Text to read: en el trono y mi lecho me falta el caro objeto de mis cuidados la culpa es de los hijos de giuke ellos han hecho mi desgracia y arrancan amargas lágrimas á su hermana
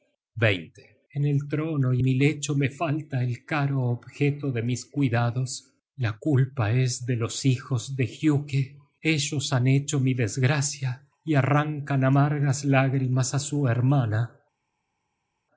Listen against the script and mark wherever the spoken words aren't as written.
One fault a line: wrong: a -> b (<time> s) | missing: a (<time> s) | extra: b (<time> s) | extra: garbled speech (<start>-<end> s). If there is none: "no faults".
no faults